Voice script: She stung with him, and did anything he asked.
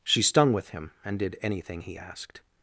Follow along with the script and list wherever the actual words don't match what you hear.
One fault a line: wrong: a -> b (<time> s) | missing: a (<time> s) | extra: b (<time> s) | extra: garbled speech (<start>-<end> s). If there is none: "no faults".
no faults